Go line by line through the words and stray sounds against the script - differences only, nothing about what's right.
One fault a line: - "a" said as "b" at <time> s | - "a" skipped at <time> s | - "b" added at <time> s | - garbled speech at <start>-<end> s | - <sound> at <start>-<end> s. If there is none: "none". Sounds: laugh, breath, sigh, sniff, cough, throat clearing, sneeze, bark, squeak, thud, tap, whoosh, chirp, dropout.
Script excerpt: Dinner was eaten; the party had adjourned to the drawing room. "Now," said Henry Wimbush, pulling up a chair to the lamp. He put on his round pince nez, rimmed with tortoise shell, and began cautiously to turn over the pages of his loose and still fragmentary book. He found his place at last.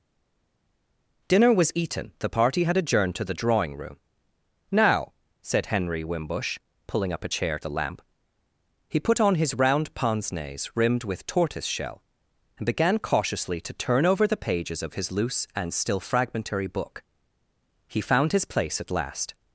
- "to" skipped at 7.6 s